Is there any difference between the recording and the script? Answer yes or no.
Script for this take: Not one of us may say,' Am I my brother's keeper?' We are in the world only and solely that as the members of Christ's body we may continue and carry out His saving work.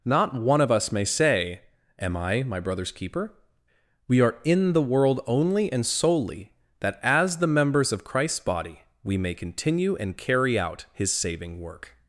no